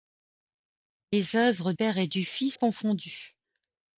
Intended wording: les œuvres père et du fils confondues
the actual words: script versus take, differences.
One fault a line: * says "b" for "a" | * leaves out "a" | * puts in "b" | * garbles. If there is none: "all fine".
all fine